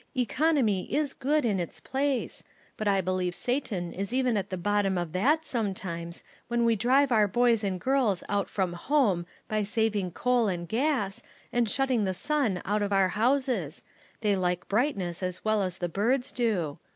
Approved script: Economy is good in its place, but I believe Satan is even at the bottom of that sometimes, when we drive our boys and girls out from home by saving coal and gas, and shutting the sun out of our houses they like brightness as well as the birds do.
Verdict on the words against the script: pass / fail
pass